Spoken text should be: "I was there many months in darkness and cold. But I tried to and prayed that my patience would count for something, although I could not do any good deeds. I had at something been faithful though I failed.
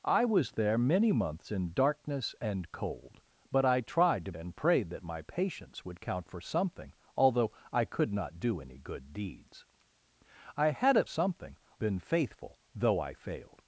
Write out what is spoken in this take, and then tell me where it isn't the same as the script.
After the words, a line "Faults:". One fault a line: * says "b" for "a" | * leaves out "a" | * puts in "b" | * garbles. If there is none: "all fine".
"I was there many months in darkness and cold. But I tried to and prayed that my patience would count for something, although I could not do any good deeds. I had at something been faithful though I failed.
Faults:
all fine